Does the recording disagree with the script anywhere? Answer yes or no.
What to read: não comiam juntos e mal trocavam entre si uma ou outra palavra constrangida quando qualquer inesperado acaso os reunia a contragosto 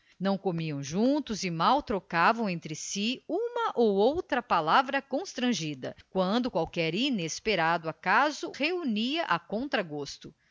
yes